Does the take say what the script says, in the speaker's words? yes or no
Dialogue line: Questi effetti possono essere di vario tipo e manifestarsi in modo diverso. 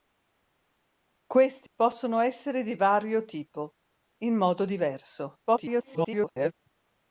no